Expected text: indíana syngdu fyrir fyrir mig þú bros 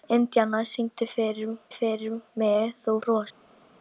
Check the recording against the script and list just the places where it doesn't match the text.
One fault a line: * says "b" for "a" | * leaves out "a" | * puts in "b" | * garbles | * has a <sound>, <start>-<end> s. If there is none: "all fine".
all fine